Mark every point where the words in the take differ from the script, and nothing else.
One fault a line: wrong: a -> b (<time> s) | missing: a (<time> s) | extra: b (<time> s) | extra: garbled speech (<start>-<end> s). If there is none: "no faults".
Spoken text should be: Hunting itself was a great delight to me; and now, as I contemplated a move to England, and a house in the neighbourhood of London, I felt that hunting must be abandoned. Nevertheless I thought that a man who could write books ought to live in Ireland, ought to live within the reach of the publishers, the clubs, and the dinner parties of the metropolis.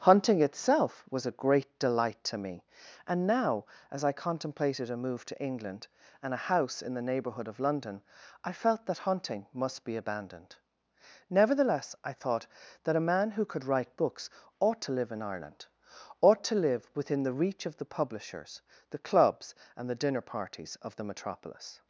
no faults